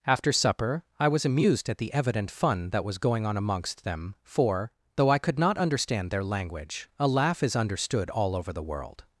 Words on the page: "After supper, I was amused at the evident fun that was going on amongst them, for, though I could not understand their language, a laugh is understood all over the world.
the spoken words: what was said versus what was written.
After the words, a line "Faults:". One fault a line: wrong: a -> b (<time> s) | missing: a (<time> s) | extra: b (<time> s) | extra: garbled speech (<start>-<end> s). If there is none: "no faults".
"After supper, I was amused at the evident fun that was going on amongst them, for, though I could not understand their language, a laugh is understood all over the world.
Faults:
no faults